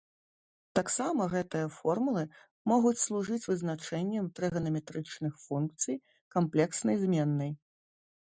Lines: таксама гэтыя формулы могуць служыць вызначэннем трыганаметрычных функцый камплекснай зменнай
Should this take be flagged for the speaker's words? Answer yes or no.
no